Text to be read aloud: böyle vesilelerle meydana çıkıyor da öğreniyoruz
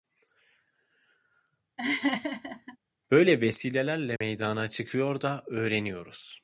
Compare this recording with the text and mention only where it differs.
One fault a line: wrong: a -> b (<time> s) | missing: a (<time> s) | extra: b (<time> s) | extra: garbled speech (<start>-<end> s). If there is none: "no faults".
no faults